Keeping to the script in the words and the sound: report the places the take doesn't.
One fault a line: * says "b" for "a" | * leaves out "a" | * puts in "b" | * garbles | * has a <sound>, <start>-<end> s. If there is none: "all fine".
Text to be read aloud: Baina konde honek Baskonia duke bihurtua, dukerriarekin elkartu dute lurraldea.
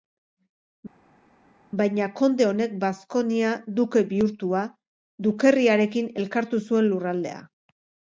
* says "zuen" for "dute"